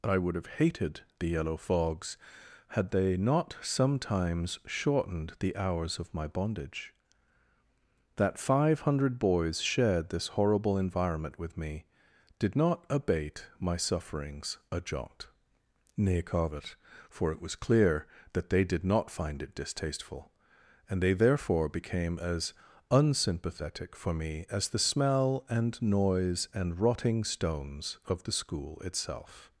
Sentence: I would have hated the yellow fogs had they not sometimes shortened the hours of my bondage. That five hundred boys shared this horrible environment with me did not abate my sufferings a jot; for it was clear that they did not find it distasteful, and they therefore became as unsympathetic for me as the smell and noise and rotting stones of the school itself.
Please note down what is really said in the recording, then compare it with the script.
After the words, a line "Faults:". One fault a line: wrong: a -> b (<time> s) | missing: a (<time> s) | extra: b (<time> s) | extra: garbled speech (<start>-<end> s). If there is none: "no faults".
I would have hated the yellow fogs had they not sometimes shortened the hours of my bondage. That five hundred boys shared this horrible environment with me did not abate my sufferings a jot; nay covet for it was clear that they did not find it distasteful, and they therefore became as unsympathetic for me as the smell and noise and rotting stones of the school itself.
Faults:
extra: nay covet (16.0 s)